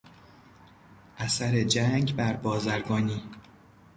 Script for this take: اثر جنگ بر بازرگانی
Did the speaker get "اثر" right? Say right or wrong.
right